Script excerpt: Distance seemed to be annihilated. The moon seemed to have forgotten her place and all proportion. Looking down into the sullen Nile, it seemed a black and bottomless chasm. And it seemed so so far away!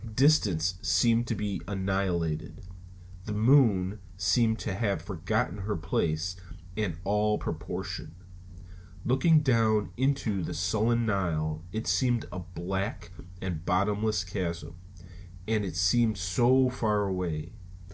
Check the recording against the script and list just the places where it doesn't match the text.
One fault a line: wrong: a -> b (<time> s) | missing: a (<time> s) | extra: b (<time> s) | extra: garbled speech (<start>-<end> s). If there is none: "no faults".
missing: so (16.7 s)